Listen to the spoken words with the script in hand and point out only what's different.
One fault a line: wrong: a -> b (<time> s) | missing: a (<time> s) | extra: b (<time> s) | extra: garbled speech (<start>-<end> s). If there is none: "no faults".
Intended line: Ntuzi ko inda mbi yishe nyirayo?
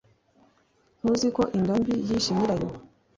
no faults